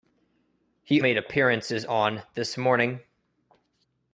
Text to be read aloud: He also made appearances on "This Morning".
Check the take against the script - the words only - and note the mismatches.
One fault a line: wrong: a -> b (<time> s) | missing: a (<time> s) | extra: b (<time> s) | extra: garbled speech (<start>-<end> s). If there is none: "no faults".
missing: also (1.0 s)